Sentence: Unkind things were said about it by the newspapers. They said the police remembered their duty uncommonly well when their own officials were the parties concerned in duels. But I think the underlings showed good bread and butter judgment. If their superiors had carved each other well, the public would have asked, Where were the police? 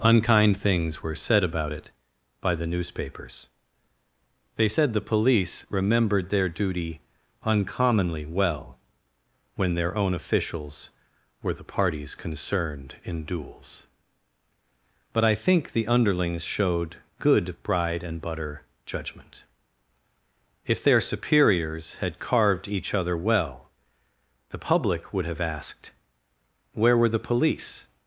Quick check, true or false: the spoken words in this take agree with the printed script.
false